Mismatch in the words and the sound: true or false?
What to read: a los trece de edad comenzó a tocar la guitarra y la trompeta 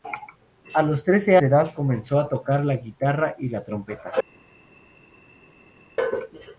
false